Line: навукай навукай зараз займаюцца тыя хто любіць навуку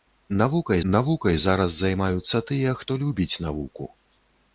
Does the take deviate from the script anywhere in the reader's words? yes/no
no